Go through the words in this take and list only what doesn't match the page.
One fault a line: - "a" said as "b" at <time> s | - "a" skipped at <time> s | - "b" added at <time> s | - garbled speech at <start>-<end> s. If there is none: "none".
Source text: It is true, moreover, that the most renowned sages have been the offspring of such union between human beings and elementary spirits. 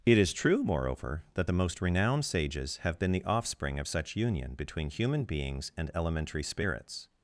none